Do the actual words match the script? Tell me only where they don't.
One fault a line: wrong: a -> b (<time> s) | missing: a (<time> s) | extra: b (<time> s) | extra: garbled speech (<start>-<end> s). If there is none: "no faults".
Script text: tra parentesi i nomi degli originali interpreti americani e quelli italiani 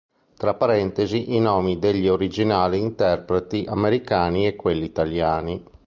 no faults